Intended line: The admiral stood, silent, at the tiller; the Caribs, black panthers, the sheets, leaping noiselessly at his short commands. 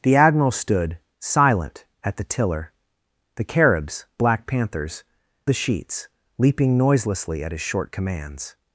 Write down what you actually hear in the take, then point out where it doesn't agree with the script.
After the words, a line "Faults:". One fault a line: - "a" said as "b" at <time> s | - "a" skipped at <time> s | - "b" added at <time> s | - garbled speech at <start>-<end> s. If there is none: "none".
The admiral stood, silent, at the tiller; the Caribs, black panthers, the sheets, leaping noiselessly at his short commands.
Faults:
none